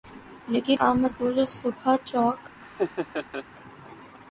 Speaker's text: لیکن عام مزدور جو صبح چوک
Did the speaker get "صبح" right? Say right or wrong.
right